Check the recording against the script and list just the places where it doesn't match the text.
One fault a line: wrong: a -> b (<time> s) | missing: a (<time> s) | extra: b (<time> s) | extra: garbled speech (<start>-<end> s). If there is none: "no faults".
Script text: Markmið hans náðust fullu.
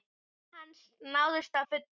no faults